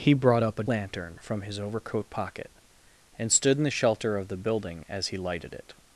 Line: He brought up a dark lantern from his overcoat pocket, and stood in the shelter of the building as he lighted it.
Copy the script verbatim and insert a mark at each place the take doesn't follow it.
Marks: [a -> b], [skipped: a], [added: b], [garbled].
He brought up a [skipped: dark] lantern from his overcoat pocket, and stood in the shelter of the building as he lighted it.